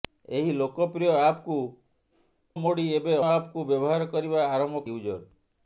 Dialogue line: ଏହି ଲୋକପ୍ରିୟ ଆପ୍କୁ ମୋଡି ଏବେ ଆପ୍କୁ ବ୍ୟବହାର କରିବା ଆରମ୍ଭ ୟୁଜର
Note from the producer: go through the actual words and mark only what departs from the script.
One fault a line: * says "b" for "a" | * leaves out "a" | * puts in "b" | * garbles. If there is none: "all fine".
all fine